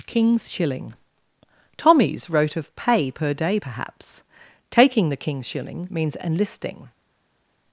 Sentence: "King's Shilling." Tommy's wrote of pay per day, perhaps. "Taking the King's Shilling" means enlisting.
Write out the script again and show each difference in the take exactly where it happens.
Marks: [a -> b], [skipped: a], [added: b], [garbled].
"King's Shilling." Tommy's wrote of pay per day, perhaps. "Taking the King's Shilling" means enlisting.